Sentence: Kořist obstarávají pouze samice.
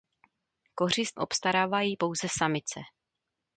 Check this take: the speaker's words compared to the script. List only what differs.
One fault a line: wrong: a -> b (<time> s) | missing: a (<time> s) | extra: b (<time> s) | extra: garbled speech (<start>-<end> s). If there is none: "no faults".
no faults